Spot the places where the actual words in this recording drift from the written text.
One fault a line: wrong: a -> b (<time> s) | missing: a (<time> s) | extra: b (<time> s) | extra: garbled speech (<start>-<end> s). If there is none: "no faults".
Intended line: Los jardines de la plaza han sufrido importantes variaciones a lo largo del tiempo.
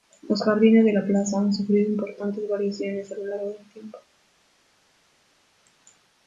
no faults